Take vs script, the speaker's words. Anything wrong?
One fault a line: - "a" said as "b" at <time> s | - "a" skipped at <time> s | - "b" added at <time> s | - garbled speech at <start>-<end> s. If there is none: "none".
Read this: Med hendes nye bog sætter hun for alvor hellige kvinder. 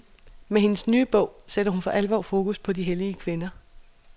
- "fokus på de" added at 2.2 s